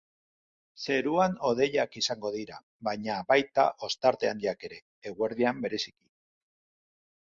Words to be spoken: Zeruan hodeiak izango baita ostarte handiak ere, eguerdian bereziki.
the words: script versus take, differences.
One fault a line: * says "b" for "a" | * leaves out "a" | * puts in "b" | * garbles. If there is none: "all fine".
* puts in "dira baina"